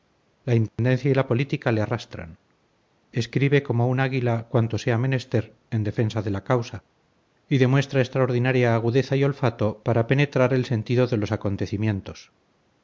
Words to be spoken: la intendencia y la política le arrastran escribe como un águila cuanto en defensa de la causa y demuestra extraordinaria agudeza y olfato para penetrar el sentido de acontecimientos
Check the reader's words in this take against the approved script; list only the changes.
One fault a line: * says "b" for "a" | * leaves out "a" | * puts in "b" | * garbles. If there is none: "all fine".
* puts in "sea menester"
* puts in "los"